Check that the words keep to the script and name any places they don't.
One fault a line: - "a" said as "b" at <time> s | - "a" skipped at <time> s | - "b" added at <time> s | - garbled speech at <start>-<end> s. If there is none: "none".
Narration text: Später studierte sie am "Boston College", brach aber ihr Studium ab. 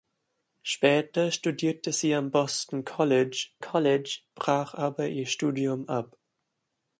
- "College" added at 3.6 s